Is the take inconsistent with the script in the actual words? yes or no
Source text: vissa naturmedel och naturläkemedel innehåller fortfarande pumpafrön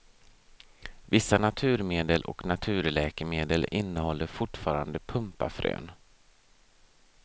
no